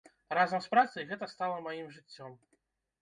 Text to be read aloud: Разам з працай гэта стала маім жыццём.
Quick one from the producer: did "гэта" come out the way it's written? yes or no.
yes